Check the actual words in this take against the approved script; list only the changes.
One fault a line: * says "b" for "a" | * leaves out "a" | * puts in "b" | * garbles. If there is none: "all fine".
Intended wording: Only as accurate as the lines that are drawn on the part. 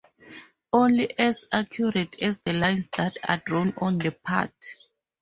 all fine